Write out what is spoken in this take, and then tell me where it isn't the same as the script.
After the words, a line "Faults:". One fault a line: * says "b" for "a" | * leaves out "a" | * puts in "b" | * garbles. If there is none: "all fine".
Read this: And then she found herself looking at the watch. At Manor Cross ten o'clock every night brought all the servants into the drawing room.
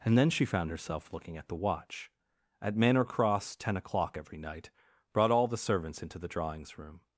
And then she found herself looking at the watch. At Manor Cross ten o'clock every night brought all the servants into the drawings room.
Faults:
* says "drawings" for "drawing"